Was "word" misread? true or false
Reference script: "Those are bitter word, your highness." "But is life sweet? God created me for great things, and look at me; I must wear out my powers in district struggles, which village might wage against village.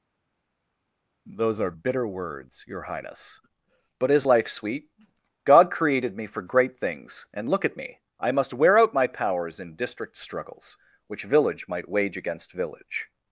true